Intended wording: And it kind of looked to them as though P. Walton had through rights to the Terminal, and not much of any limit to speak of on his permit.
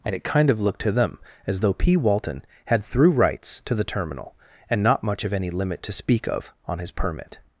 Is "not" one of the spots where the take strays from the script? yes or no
no